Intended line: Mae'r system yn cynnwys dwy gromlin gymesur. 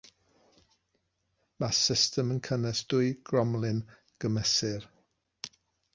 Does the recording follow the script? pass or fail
pass